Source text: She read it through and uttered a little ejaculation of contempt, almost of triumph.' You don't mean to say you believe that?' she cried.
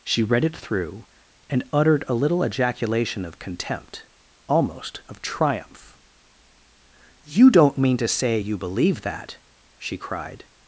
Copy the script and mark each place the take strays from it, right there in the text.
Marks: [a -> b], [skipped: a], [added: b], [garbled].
She read it through and uttered a little ejaculation of contempt, almost of triumph.' You don't mean to say you believe that?' she cried.